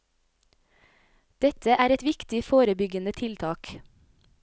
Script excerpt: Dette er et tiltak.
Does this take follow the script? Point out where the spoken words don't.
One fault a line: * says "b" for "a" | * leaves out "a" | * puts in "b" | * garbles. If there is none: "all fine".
* puts in "viktig forebyggende"